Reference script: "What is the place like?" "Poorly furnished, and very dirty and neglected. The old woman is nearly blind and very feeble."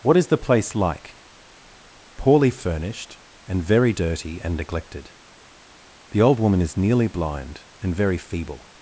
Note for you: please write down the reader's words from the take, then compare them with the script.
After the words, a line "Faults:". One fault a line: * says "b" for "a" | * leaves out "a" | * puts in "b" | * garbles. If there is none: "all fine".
"What is the place like?" "Poorly furnished, and very dirty and neglected. The old woman is nearly blind and very feeble."
Faults:
all fine